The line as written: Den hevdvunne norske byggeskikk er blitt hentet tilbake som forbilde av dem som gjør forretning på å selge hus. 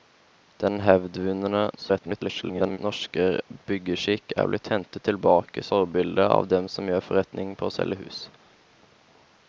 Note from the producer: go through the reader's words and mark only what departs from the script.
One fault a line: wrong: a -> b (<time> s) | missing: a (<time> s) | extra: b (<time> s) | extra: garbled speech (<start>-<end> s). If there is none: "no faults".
extra: garbled speech (1.8-2.8 s)
missing: som (5.7 s)